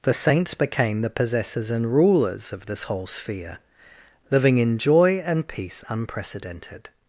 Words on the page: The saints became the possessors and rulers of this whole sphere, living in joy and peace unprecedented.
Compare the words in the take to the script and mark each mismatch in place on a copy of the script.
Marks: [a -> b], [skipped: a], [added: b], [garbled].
The saints became the possessors and rulers of this whole sphere, living in joy and peace unprecedented.